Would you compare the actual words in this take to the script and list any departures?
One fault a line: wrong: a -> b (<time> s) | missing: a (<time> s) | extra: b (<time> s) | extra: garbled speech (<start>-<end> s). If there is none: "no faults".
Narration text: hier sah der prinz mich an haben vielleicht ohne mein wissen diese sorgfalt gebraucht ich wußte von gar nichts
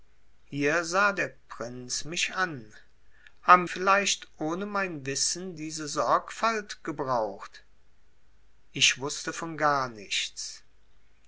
no faults